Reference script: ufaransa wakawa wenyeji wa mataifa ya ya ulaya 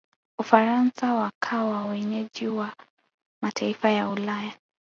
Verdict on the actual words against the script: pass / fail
fail